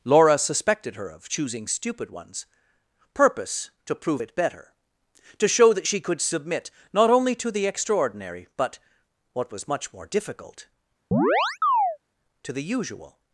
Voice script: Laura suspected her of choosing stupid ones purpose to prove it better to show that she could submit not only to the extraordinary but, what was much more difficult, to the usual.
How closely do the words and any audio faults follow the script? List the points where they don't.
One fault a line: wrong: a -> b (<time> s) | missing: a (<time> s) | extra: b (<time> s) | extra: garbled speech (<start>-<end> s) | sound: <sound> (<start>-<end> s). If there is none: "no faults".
sound: chirp (11.1-12.0 s)